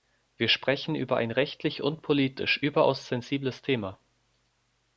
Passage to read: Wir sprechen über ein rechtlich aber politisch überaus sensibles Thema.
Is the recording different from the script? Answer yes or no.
yes